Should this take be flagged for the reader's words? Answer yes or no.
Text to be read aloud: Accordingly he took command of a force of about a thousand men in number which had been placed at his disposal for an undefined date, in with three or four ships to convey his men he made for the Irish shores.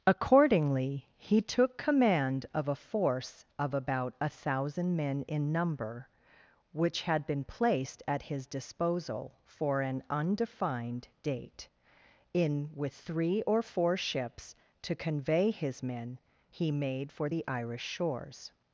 no